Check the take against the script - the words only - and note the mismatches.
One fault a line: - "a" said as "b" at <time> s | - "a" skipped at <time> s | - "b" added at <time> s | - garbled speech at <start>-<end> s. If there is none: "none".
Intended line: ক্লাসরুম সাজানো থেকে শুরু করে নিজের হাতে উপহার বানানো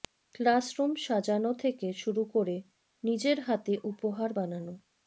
none